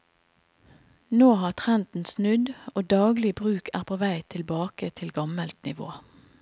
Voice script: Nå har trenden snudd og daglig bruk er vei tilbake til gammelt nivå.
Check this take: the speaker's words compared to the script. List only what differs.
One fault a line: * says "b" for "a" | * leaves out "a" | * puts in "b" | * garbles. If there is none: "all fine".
* puts in "på"